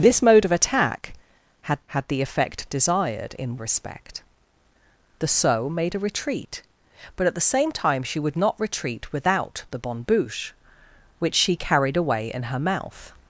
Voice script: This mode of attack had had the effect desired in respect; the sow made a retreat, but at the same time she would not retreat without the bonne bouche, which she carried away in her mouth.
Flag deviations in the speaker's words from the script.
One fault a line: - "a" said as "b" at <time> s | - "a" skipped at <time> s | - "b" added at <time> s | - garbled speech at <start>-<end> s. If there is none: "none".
none